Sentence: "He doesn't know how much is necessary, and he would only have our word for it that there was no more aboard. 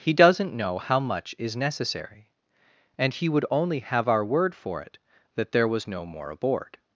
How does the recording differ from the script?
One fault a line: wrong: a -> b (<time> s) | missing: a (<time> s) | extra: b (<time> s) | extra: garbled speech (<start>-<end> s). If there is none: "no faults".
no faults